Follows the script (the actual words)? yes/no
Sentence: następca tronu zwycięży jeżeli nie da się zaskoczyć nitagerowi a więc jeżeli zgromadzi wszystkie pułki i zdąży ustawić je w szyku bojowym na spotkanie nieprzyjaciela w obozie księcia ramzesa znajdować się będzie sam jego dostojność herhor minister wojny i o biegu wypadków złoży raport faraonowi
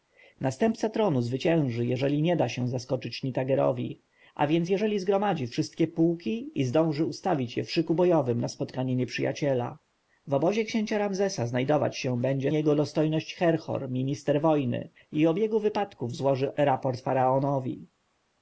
no